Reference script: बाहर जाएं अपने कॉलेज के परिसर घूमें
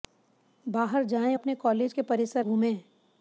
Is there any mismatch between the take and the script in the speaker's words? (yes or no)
no